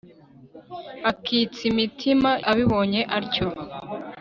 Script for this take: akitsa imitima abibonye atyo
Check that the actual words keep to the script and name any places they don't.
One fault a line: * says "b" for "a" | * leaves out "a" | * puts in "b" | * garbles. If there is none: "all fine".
all fine